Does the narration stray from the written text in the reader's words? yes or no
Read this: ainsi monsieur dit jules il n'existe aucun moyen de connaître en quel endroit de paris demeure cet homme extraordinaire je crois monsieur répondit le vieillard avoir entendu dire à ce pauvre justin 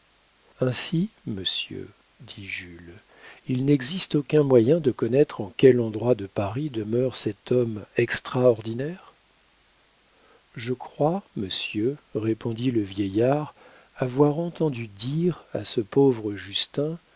no